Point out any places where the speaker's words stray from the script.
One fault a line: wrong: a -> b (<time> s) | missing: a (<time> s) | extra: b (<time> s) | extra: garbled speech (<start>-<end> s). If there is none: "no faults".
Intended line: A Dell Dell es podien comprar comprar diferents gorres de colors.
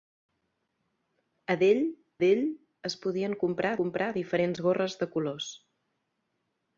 no faults